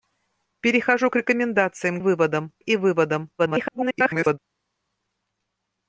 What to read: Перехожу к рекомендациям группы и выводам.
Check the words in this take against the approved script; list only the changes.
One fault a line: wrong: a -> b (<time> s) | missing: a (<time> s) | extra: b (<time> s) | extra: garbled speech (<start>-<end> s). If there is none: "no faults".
wrong: группы -> выводам (2.0 s)
extra: garbled speech (3.4-4.4 s)